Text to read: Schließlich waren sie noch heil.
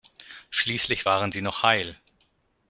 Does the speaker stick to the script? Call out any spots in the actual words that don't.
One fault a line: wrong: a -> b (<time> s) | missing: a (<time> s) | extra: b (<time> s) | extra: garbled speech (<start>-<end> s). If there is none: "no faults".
no faults